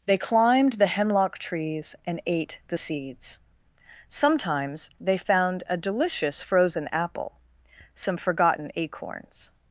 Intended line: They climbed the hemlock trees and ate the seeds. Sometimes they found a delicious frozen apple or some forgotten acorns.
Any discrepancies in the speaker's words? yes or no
yes